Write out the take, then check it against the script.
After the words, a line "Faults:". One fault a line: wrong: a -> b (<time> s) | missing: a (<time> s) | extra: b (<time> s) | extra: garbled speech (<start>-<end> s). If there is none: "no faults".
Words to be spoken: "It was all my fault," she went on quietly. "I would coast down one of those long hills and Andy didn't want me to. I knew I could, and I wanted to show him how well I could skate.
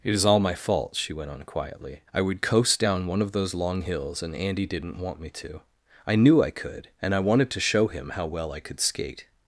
"It is all my fault," she went on quietly. "I would coast down one of those long hills and Andy didn't want me to. I knew I could, and I wanted to show him how well I could skate.
Faults:
wrong: was -> is (0.1 s)